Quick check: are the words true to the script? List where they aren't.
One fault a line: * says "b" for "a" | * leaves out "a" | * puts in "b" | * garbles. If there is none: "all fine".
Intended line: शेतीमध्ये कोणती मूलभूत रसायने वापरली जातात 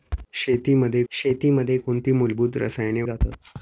* puts in "शेतीमध्ये"
* leaves out "वापरली"